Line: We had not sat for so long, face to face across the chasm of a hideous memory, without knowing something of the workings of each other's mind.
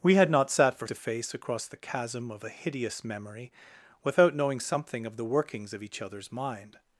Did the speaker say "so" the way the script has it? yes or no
no